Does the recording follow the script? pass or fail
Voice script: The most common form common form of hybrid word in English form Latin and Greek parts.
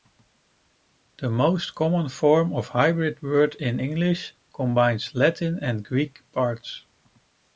fail